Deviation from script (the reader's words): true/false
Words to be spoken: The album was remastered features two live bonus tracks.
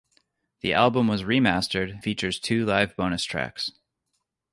false